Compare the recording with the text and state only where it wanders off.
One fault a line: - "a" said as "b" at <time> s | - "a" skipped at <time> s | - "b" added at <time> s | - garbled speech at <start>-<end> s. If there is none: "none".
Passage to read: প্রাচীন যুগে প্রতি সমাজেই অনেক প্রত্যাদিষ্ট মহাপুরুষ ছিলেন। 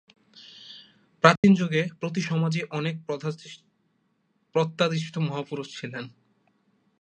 none